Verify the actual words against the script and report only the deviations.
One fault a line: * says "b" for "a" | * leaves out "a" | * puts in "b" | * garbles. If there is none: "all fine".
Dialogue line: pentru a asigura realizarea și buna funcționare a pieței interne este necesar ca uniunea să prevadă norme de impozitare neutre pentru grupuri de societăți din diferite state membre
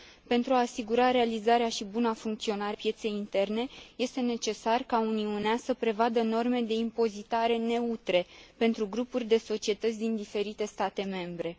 * leaves out "a"